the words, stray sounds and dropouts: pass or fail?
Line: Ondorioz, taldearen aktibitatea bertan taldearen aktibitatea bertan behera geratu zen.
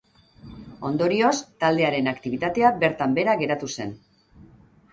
fail